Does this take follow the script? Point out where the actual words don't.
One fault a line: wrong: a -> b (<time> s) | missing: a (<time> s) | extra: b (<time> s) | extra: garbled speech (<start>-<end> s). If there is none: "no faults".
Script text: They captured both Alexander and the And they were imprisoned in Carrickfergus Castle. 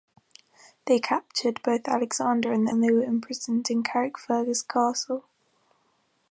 no faults